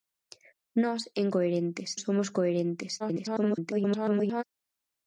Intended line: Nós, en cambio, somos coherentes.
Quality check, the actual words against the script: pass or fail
fail